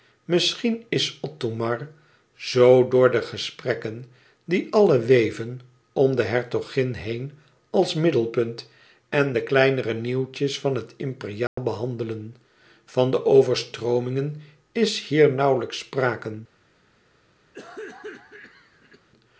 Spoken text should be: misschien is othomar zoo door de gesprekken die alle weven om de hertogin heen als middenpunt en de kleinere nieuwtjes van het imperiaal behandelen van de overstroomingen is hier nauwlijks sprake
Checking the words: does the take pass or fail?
pass